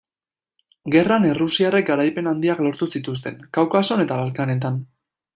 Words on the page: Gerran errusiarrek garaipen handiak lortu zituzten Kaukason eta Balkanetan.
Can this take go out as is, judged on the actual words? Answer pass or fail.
pass